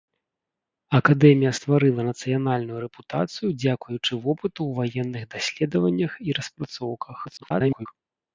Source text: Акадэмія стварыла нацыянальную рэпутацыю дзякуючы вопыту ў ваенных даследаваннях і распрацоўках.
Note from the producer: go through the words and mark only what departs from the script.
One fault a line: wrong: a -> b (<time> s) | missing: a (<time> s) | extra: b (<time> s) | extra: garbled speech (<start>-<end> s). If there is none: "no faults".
extra: garbled speech (7.2-7.9 s)